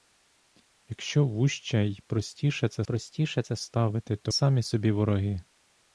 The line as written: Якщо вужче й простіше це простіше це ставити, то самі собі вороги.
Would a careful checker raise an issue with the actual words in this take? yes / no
no